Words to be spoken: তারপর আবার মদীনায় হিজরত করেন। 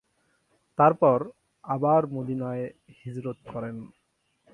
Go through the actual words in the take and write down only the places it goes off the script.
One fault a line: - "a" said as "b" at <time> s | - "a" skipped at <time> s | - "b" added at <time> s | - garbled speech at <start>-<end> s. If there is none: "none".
none